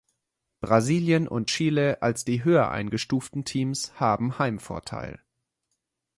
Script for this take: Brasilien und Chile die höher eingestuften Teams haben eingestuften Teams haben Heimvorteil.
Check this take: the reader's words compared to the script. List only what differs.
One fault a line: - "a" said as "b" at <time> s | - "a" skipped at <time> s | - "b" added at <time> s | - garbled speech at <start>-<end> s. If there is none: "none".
- "als" added at 2.0 s
- "eingestuften Teams haben" skipped at 4.4 s